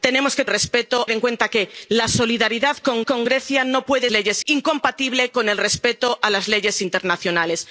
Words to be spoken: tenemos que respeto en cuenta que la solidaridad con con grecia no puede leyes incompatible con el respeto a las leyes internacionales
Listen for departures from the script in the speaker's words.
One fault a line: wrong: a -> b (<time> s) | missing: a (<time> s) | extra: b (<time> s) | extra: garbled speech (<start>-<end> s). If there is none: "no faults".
no faults